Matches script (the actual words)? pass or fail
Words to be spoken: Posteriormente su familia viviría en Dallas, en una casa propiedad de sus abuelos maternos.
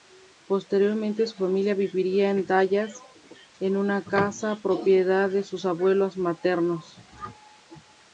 pass